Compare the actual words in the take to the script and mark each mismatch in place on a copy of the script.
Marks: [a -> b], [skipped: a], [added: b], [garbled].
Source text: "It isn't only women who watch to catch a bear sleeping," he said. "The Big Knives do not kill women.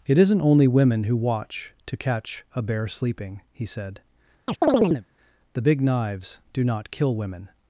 "It isn't only women who watch to catch a bear sleeping," he said. "The Big Knives do not kill women.